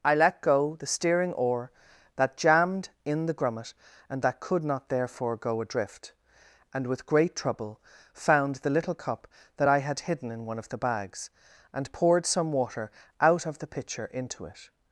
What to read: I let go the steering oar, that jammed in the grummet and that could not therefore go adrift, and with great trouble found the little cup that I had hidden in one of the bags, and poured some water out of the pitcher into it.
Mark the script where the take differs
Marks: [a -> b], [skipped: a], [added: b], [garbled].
I let go the steering oar, that jammed in the grummet and that could not therefore go adrift, and with great trouble found the little cup that I had hidden in one of the bags, and poured some water out of the pitcher into it.